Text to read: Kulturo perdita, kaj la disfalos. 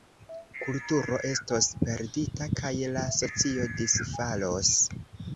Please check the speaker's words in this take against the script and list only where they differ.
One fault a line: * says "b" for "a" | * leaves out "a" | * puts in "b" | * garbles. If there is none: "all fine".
* puts in "estos"
* puts in "socio"